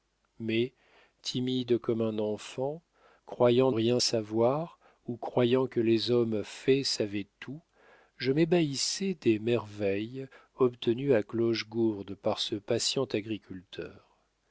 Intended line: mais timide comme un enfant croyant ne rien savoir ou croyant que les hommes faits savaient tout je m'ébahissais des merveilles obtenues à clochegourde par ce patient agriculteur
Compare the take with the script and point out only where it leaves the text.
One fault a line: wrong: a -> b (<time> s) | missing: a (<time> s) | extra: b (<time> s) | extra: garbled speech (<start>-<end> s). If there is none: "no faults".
missing: ne (3.7 s)